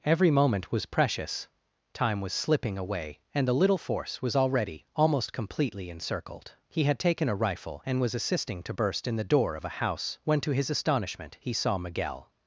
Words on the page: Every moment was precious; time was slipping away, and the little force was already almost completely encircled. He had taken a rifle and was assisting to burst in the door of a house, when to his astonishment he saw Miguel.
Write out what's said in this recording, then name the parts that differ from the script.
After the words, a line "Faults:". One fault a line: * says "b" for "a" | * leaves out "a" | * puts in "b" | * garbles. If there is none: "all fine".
Every moment was precious; time was slipping away, and the little force was already almost completely encircled. He had taken a rifle and was assisting to burst in the door of a house, when to his astonishment he saw Miguel.
Faults:
all fine